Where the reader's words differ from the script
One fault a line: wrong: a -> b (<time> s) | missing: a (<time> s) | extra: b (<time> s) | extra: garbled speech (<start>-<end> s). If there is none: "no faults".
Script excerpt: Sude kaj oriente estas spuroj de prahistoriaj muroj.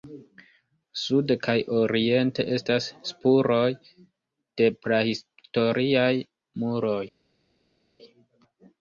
no faults